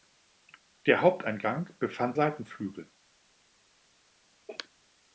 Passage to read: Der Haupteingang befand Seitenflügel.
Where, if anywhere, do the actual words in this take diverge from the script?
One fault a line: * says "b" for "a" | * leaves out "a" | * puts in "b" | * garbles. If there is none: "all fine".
all fine